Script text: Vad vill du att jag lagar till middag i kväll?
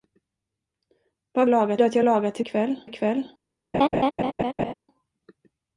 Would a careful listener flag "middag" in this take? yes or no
yes